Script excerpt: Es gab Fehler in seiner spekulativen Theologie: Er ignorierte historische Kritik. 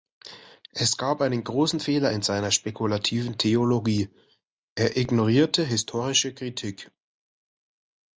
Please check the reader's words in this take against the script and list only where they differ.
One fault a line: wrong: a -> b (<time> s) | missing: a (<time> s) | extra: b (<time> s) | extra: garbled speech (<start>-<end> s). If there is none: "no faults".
extra: einen großen (1.2 s)